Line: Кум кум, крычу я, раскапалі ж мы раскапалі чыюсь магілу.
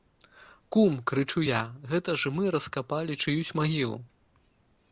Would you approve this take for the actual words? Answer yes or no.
no